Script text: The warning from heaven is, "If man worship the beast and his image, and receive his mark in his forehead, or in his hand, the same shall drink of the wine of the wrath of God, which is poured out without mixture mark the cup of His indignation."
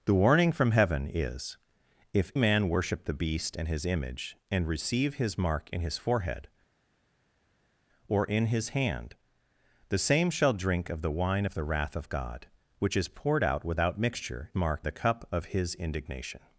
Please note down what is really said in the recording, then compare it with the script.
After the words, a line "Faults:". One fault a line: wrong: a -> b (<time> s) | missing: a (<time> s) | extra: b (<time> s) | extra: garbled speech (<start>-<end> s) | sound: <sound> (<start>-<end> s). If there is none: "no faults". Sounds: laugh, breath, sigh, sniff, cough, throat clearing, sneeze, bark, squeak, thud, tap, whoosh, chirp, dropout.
The warning from heaven is, "If man worship the beast and his image, and receive his mark in his forehead, or in his hand, the same shall drink of the wine of the wrath of God, which is poured out without mixture mark the cup of His indignation."
Faults:
no faults